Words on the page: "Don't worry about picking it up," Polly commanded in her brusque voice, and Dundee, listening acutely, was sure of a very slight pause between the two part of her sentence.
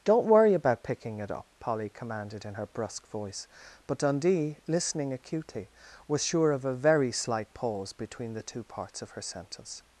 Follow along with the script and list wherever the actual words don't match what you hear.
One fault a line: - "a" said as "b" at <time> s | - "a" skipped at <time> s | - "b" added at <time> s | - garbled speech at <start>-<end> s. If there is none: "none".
- "and" said as "but" at 3.9 s
- "part" said as "parts" at 8.6 s